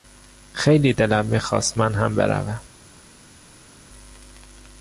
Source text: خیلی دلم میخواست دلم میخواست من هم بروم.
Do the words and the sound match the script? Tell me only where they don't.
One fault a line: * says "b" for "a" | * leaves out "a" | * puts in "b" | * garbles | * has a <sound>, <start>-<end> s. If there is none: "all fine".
* leaves out "دلم میخواست"